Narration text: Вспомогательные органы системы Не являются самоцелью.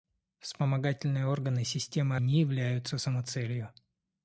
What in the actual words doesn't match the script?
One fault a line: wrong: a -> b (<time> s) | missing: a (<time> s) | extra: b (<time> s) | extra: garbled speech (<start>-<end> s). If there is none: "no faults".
no faults